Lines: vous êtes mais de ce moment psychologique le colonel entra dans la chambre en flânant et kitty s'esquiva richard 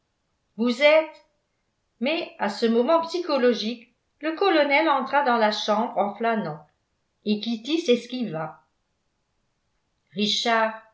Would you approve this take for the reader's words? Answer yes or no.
no